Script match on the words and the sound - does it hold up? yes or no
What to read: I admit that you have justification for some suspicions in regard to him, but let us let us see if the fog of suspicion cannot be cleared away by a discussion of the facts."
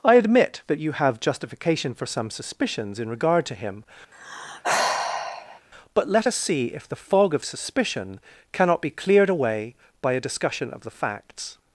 no